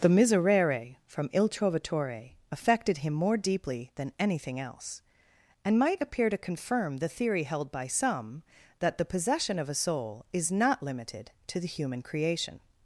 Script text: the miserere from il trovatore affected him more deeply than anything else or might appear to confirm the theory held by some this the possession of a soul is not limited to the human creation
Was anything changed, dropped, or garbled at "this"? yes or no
yes